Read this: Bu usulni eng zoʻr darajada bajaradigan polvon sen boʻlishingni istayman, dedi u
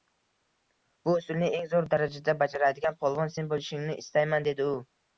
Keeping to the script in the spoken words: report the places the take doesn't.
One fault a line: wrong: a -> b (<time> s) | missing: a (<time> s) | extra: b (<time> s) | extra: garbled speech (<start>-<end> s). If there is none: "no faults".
no faults